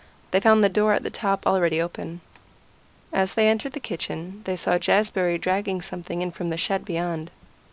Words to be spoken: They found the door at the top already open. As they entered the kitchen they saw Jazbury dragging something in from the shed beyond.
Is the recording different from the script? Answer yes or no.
no